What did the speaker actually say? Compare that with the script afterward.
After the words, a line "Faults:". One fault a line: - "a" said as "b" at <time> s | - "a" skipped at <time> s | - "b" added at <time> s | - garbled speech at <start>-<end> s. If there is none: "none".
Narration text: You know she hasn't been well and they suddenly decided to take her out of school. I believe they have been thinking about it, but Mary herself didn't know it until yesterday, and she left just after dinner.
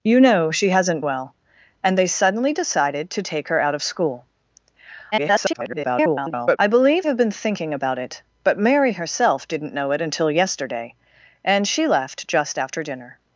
You know she hasn't well and they suddenly decided to take her out of school. [garbled] I believe have been thinking about it, but Mary herself didn't know it until yesterday, and she left just after dinner.
Faults:
- "been" skipped at 1.0 s
- garbled speech at 5.1-6.6 s
- "they" skipped at 7.1 s